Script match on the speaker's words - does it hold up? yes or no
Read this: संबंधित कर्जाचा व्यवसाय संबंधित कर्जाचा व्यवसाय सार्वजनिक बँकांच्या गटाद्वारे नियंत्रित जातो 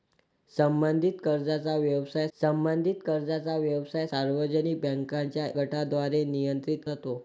yes